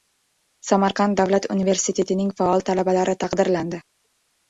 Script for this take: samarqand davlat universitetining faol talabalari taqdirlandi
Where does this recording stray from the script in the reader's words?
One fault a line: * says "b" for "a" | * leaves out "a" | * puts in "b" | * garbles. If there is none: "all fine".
all fine